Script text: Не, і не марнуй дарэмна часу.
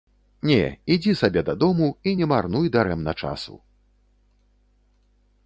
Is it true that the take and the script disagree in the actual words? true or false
true